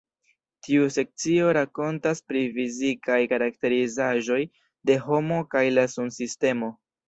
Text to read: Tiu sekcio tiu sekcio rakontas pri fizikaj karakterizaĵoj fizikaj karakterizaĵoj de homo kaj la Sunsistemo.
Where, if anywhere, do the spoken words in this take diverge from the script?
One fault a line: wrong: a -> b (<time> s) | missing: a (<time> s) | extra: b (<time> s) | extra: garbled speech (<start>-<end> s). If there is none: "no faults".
missing: tiu sekcio (1.5 s)
missing: fizikaj karakterizaĵoj (4.4 s)